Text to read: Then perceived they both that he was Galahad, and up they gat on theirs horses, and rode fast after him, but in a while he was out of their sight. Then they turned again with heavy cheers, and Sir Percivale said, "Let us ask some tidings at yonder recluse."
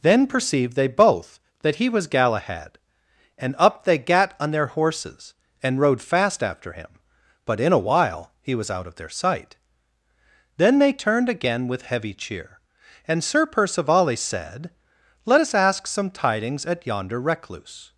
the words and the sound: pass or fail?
fail